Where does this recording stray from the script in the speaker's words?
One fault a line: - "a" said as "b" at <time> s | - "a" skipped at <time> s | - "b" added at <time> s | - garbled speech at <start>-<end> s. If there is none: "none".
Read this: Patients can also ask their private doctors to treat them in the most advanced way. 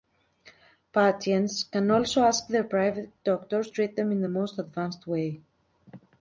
- "to" skipped at 3.7 s